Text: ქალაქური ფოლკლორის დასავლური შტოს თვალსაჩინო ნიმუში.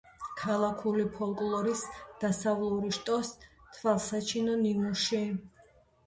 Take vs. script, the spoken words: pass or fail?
pass